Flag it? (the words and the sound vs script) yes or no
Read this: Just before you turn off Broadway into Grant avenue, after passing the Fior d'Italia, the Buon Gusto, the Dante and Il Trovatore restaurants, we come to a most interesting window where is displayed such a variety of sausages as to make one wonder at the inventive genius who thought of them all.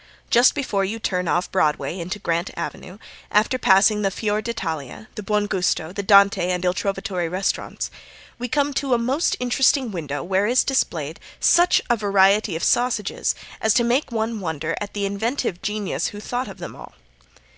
no